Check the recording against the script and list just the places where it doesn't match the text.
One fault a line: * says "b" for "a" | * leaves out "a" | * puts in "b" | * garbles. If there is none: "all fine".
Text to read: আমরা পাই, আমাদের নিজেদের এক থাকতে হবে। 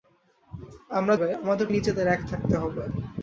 all fine